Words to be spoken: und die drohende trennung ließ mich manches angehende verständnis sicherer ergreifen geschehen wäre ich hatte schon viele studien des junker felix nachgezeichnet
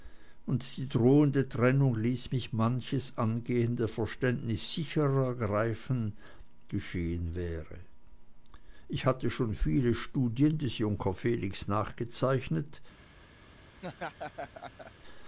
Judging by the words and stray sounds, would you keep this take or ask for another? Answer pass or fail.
fail